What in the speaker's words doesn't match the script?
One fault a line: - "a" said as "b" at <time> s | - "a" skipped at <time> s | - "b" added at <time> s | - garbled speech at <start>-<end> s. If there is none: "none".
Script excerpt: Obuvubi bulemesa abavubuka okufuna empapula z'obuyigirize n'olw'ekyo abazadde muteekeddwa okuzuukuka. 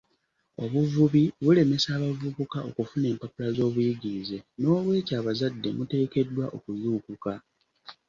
none